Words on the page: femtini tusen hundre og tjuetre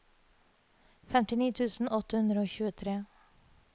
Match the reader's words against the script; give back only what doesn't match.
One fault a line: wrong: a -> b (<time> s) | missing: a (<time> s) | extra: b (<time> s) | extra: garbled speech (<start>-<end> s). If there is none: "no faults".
extra: åtte (2.0 s)